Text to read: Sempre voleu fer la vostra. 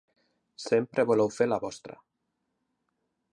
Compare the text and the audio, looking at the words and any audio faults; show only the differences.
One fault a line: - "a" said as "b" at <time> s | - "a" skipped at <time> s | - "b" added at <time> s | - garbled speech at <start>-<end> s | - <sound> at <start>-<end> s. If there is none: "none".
none